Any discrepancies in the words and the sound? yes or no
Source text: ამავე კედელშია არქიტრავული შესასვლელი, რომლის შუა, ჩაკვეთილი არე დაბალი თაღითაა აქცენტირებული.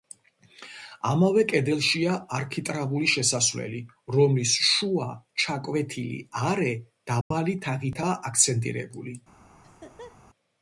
yes